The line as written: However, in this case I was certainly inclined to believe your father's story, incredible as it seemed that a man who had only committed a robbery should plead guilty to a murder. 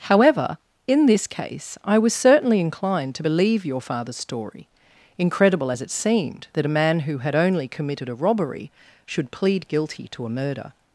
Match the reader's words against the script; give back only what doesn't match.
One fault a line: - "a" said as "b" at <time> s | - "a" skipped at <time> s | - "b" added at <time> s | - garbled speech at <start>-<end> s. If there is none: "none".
none